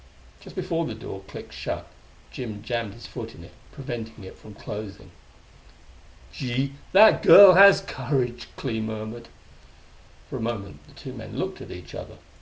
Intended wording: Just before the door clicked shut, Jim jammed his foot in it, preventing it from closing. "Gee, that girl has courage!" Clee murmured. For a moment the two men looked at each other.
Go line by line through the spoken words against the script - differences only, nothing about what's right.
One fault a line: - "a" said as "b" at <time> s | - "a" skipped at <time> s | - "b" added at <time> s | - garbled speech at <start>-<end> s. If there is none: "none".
none